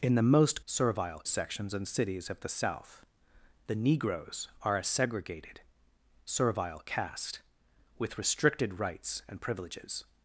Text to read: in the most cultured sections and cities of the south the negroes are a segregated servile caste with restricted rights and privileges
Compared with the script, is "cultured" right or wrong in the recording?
wrong